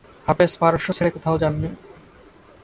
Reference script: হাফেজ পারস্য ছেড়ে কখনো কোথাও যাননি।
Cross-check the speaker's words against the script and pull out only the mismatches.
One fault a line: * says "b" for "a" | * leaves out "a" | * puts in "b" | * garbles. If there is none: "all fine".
* leaves out "কখনো"